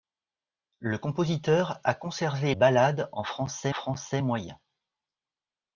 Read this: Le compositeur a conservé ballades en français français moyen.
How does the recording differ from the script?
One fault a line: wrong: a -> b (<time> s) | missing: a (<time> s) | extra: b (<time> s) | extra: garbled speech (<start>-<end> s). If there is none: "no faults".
no faults